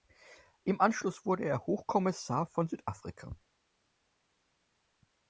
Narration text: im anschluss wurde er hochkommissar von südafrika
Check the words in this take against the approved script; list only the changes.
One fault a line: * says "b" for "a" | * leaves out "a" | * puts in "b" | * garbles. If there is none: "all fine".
all fine